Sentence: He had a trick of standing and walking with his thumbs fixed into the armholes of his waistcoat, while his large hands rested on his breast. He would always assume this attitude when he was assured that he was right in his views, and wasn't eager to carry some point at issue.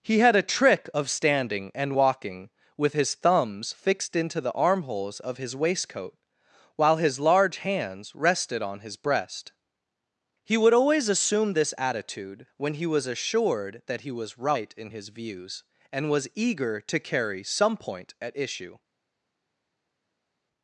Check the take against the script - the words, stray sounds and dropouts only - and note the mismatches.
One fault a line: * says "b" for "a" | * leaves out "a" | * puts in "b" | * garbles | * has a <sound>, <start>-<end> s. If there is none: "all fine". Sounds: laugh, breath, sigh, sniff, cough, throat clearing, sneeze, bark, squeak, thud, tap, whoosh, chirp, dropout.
* says "was" for "wasn't"